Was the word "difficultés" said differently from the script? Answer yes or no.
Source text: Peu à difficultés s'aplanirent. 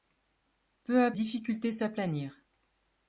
no